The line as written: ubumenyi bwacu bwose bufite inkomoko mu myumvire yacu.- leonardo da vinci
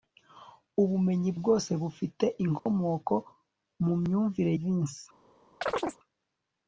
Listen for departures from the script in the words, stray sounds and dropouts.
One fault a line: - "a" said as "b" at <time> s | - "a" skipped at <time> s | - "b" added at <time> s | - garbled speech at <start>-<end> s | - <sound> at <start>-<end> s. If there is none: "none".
- "bwacu" skipped at 1.3 s
- dropout at 2.6-2.7 s
- "yacu leonardo da" skipped at 4.5 s
- chirp at 5.6-6.0 s